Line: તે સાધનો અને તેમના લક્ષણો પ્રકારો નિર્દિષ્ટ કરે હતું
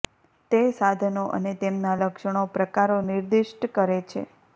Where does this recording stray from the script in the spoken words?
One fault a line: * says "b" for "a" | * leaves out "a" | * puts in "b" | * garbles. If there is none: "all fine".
* says "છે" for "હતું"